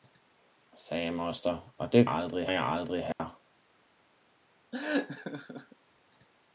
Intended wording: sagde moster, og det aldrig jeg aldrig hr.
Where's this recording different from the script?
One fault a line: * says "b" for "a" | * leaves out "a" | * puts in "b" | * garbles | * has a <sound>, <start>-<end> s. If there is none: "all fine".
* has a dropout, 3.1-3.2 s
* has a laugh, 4.7-5.8 s